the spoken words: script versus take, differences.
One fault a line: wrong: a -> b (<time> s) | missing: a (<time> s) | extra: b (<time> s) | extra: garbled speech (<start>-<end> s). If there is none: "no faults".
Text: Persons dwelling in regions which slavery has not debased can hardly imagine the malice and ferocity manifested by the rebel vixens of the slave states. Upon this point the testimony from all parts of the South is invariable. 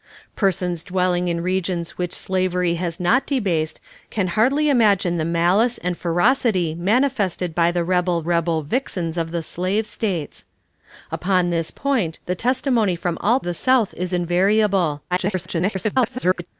extra: rebel (8.2 s)
missing: parts of (13.4 s)
extra: garbled speech (15.1-16.5 s)